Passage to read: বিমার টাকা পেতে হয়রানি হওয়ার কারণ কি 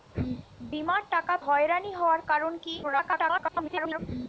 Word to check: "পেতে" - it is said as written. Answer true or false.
false